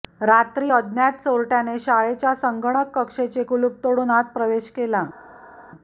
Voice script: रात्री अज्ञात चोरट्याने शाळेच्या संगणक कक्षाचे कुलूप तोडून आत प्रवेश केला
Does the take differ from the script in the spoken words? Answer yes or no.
no